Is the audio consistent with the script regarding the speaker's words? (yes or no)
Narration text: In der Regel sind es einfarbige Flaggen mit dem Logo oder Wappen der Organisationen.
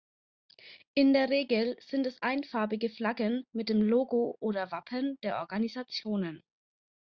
yes